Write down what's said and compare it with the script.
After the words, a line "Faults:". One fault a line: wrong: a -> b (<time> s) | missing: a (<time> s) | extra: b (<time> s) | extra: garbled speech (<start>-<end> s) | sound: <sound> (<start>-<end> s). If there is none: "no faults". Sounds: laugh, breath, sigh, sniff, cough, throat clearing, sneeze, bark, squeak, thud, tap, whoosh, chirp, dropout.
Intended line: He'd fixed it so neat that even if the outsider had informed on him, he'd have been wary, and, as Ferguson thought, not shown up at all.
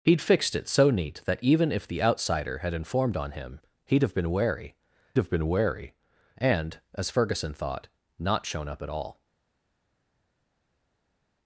He'd fixed it so neat that even if the outsider had informed on him, he'd have been wary have been wary, and, as Ferguson thought, not shown up at all.
Faults:
extra: have been wary (5.2 s)